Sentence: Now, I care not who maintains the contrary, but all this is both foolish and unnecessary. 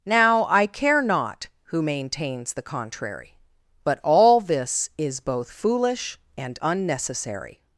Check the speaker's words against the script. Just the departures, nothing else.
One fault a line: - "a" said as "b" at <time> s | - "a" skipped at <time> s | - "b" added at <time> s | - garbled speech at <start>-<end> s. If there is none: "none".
none